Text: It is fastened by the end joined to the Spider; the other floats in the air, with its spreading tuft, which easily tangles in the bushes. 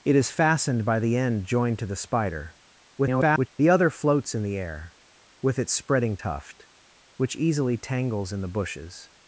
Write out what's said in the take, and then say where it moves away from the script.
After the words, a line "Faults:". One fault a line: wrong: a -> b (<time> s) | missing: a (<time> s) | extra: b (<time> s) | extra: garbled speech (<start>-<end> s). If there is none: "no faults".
It is fastened by the end joined to the Spider; [garbled] the other floats in the air, with its spreading tuft, which easily tangles in the bushes.
Faults:
extra: garbled speech (3.0-3.5 s)